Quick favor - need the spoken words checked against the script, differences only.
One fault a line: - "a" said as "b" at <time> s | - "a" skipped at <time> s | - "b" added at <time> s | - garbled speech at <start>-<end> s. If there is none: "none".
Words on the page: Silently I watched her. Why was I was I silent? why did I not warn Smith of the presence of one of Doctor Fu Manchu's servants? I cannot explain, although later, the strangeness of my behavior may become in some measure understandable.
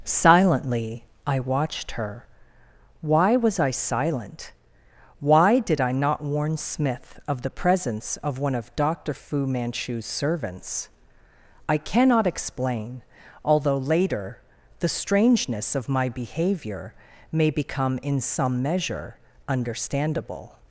- "was I" skipped at 3.7 s